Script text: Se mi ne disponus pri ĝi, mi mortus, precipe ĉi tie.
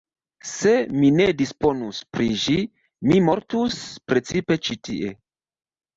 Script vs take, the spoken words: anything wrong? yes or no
no